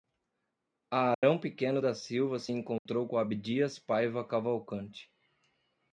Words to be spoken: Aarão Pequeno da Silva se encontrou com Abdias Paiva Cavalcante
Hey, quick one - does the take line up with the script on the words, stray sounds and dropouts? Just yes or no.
no